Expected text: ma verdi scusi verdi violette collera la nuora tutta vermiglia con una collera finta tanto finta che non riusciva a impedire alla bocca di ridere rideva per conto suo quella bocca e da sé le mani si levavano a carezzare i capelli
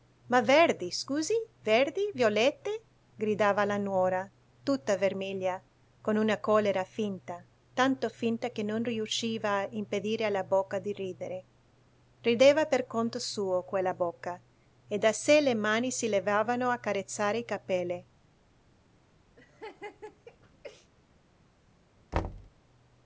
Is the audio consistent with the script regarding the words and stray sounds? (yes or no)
no